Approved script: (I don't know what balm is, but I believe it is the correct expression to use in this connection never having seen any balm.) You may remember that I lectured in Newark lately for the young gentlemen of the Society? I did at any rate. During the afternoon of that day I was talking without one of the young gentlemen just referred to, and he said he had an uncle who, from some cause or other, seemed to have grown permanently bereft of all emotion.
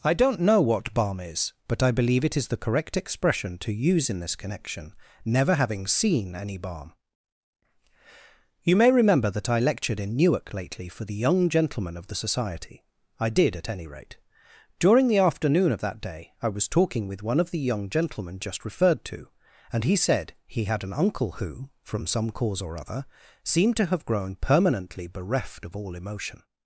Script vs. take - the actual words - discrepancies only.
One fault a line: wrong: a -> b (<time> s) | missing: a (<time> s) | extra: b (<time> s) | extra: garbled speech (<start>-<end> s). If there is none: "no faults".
wrong: without -> with (17.1 s)